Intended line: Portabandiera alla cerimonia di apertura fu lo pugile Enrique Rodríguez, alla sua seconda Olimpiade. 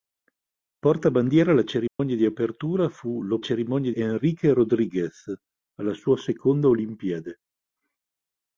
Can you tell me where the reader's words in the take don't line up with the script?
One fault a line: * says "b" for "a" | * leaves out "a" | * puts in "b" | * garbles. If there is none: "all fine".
* says "cerimonia" for "pugile"